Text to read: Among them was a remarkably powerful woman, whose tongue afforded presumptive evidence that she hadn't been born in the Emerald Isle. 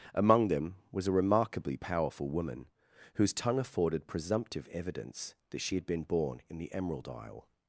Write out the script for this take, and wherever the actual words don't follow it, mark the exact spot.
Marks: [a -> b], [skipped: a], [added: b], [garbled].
Among them was a remarkably powerful woman, whose tongue afforded presumptive evidence that she [hadn't -> had] been born in the Emerald Isle.